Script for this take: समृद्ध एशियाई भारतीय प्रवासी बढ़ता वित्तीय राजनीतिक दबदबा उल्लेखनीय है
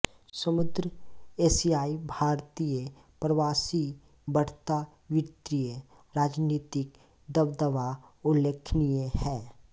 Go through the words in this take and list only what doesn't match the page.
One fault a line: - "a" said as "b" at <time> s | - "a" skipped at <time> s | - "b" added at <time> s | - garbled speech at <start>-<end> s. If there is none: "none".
none